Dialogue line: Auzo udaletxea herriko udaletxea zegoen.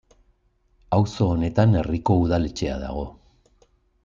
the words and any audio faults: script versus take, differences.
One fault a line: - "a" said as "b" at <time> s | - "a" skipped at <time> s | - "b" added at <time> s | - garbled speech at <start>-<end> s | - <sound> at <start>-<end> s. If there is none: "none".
- "udaletxea" said as "honetan" at 1.3 s
- "zegoen" said as "dago" at 2.9 s